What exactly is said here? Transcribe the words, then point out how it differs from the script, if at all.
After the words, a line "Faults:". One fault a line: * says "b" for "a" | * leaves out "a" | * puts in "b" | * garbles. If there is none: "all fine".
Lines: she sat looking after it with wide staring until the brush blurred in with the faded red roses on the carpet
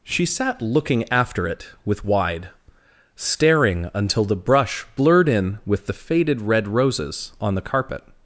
she sat looking after it with wide staring until the brush blurred in with the faded red roses on the carpet
Faults:
all fine